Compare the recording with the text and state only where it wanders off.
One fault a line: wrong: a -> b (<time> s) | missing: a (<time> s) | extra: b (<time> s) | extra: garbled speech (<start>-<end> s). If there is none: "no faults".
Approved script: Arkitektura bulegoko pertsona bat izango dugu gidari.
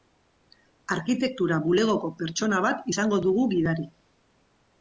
no faults